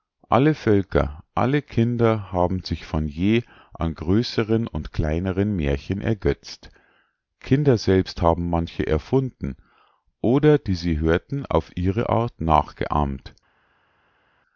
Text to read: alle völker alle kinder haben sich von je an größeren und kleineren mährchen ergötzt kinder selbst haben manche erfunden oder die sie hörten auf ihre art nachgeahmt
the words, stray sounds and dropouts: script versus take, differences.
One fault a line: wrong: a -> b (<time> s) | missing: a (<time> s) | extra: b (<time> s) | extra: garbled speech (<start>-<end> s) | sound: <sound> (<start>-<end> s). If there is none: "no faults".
no faults